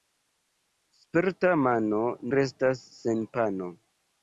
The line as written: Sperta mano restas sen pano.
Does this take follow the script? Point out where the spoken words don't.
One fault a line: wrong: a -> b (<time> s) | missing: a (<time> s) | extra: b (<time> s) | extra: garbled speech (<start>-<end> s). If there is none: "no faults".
no faults